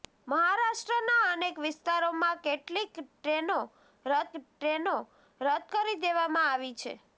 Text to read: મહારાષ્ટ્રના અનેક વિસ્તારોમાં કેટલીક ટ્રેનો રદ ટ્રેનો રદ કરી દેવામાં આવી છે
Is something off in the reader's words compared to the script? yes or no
no